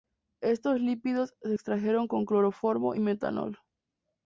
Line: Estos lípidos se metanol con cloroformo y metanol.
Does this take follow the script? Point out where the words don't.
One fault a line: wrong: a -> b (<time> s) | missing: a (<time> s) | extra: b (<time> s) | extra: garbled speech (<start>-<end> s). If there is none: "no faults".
wrong: metanol -> extrajeron (1.5 s)